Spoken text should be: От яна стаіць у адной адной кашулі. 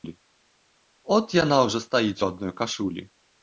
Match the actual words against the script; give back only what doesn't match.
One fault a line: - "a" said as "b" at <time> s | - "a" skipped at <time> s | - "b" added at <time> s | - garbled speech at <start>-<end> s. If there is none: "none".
- "ўжо" added at 1.7 s
- "адной" skipped at 2.6 s